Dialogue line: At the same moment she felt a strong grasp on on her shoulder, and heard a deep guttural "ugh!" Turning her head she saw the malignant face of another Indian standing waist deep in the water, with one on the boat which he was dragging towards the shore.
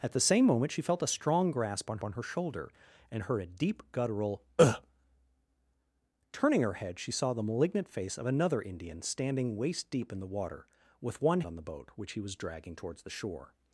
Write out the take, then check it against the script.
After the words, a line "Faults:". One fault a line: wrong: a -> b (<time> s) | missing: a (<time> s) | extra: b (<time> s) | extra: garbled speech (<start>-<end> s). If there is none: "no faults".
At the same moment she felt a strong grasp on on her shoulder, and heard a deep guttural "ugh!" Turning her head she saw the malignant face of another Indian standing waist deep in the water, with one on the boat which he was dragging towards the shore.
Faults:
no faults